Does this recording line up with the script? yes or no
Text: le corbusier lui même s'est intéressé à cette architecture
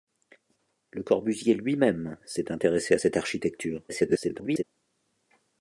no